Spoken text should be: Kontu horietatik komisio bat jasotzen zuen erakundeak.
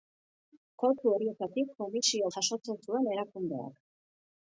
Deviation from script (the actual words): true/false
true